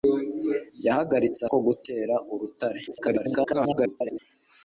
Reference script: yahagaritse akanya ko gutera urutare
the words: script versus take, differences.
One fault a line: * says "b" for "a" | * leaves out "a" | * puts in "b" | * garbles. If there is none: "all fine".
* leaves out "akanya"
* garbles